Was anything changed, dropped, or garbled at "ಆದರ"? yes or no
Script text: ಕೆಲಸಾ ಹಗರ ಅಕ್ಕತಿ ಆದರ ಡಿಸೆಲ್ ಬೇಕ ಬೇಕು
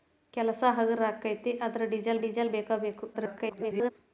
no